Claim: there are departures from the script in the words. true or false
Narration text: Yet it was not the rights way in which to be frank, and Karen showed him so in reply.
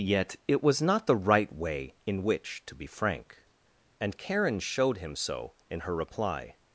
true